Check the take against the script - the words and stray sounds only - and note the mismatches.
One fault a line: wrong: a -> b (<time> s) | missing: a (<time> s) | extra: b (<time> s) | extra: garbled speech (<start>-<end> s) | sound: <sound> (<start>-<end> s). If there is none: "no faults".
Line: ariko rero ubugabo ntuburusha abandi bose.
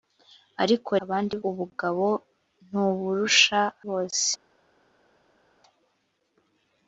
wrong: rero -> abandi (1.0 s)
missing: abandi (3.6 s)